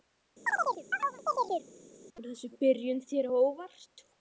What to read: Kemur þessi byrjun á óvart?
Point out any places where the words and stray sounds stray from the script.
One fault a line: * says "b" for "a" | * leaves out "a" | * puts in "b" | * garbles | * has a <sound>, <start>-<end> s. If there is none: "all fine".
* has a chirp, 0.5-1.7 s
* puts in "þér"